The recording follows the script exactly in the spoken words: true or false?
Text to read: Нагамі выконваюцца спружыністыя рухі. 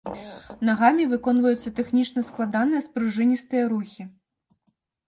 false